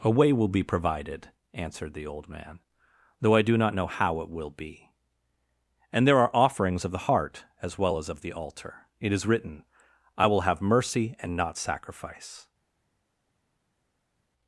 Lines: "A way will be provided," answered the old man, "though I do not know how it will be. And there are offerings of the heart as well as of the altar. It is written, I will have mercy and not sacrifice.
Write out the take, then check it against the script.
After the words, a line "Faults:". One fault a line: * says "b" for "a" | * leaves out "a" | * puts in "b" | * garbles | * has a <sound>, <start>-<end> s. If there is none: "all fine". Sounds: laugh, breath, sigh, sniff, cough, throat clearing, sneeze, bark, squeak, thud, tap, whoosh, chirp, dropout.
"A way will be provided," answered the old man, "though I do not know how it will be. And there are offerings of the heart as well as of the altar. It is written, I will have mercy and not sacrifice.
Faults:
all fine